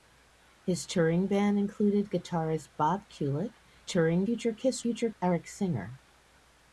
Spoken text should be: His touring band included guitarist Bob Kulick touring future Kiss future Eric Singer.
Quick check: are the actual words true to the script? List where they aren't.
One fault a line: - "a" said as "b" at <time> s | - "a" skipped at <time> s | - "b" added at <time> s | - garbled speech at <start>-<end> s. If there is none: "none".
none